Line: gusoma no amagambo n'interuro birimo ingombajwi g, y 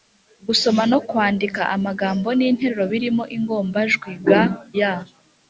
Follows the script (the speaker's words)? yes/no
no